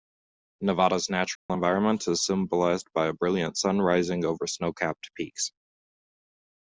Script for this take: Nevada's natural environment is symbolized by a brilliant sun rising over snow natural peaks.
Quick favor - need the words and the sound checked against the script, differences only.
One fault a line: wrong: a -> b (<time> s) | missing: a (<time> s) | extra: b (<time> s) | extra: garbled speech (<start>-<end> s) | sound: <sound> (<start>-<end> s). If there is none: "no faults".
sound: dropout (1.4-1.5 s)
wrong: natural -> capped (4.7 s)